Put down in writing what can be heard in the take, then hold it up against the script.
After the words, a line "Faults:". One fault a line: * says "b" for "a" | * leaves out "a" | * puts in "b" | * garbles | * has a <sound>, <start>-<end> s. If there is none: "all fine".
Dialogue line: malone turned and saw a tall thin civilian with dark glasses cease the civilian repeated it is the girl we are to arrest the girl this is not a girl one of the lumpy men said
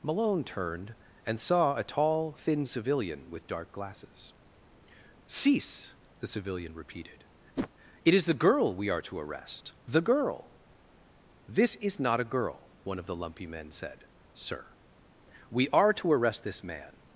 malone turned and saw a tall thin civilian with dark glasses cease the civilian repeated it is the girl we are to arrest the girl this is not a girl one of the lumpy men said sir we are to arrest this man
Faults:
* has a whoosh, 7.6-7.7 s
* puts in "sir we are to arrest this man"